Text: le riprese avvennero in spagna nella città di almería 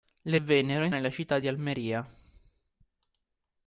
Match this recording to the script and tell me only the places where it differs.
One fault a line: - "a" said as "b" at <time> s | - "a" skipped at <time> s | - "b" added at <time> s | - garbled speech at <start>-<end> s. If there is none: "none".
- "riprese" skipped at 0.4 s
- "spagna" skipped at 0.9 s